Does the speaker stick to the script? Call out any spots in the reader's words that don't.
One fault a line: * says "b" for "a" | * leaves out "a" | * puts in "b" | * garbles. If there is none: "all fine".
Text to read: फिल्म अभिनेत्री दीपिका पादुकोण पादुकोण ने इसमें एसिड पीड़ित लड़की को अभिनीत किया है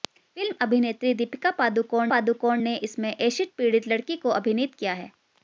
all fine